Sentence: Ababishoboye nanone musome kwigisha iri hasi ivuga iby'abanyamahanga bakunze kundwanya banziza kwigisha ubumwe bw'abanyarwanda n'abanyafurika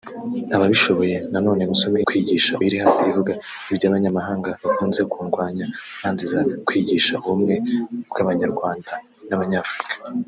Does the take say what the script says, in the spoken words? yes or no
yes